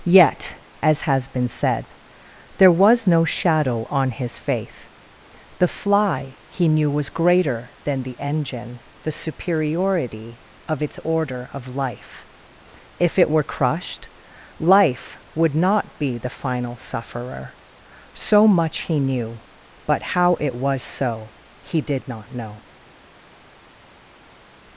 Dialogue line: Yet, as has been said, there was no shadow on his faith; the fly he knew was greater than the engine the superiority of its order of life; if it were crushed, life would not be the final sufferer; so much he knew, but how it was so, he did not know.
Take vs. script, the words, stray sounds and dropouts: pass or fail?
pass